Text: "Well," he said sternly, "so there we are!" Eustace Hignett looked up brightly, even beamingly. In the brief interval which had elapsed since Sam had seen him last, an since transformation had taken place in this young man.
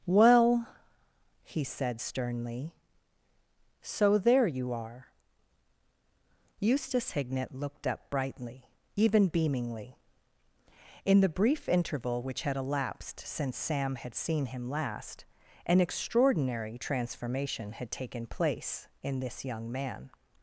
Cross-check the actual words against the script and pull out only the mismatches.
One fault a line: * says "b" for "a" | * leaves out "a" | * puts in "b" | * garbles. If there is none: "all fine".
* says "you" for "we"
* says "extraordinary" for "since"